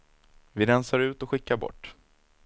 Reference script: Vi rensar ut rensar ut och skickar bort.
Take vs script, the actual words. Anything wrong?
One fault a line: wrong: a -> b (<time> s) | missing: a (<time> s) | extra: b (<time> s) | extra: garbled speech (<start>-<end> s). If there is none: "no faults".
missing: rensar ut (1.2 s)